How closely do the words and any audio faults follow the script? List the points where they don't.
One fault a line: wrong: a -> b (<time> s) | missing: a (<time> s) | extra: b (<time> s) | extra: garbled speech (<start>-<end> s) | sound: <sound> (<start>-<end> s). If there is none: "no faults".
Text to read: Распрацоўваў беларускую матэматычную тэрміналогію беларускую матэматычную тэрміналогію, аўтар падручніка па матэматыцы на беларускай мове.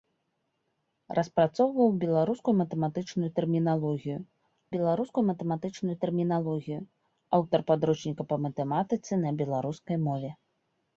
no faults